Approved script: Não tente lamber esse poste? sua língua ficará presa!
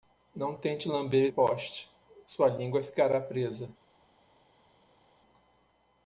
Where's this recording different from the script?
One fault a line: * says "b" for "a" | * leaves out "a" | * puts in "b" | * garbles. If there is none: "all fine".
* leaves out "esse"